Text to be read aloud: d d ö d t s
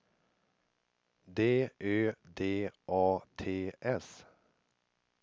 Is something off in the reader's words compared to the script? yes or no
yes